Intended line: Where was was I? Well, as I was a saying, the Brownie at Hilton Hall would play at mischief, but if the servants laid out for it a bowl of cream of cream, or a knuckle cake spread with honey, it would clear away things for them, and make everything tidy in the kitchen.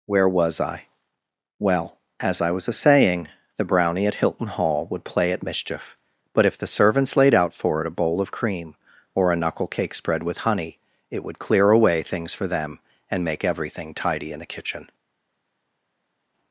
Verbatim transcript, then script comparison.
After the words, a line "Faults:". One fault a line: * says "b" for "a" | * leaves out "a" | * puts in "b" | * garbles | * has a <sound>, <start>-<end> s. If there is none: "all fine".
Where was I? Well, as I was a saying, the Brownie at Hilton Hall would play at mischief, but if the servants laid out for it a bowl of cream, or a knuckle cake spread with honey, it would clear away things for them, and make everything tidy in the kitchen.
Faults:
* leaves out "was"
* leaves out "of cream"